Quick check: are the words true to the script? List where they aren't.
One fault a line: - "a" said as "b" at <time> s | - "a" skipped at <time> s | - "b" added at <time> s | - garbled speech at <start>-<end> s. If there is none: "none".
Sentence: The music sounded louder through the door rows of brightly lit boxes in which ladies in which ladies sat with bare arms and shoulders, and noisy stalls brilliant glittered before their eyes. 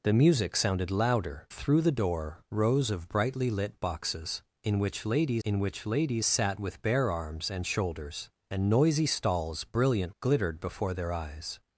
none